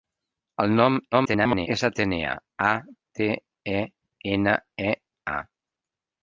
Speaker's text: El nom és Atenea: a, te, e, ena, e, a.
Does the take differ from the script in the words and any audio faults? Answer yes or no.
yes